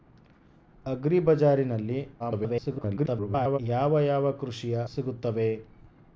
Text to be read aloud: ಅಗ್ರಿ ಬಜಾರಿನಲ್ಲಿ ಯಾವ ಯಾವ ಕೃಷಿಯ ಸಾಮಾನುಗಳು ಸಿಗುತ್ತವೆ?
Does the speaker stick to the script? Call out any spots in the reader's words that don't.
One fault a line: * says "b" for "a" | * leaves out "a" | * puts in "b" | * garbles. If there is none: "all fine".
* garbles
* leaves out "ಸಾಮಾನುಗಳು"